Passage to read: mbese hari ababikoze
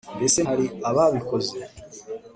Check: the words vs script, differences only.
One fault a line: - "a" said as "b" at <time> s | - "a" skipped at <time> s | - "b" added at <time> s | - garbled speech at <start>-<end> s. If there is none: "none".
none